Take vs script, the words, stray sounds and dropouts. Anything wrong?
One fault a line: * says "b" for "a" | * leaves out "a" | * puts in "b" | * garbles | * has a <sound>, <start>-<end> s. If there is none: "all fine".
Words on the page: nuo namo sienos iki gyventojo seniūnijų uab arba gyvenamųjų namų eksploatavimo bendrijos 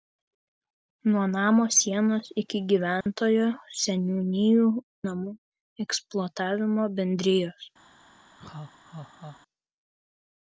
* has a dropout, 3.0-3.1 s
* leaves out "uab arba gyvenamųjų"
* has a laugh, 8.4-9.4 s